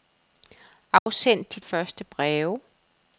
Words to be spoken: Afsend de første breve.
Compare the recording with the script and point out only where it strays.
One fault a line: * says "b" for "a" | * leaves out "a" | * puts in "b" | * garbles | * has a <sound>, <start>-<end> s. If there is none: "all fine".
* has a dropout, 1.0-1.1 s